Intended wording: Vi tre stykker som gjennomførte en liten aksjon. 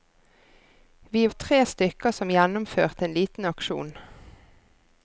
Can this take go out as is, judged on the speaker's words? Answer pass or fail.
pass